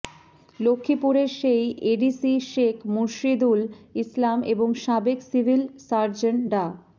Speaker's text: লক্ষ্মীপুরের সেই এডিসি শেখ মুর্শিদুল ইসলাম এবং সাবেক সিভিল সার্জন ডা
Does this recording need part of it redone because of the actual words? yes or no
no